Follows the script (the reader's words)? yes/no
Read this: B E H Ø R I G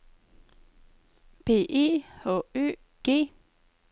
no